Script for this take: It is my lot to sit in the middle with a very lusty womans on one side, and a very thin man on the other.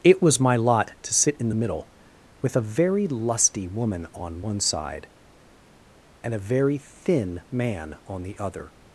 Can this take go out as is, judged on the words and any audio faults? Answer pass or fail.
fail